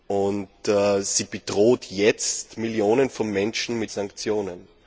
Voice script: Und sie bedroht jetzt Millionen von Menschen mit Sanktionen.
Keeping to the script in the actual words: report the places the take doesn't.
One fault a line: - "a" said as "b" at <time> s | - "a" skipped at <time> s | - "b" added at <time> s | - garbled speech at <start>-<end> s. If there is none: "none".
none